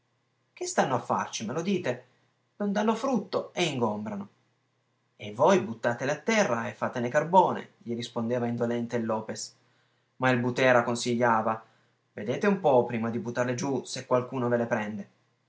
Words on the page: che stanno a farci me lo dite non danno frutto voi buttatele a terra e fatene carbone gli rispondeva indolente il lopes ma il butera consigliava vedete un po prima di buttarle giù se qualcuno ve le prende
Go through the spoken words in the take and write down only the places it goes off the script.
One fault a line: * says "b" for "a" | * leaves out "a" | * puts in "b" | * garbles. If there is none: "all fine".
* puts in "e ingombrano e"